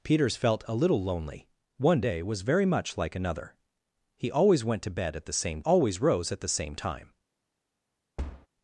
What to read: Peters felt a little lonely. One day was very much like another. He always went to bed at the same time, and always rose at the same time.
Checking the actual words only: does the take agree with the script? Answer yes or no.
no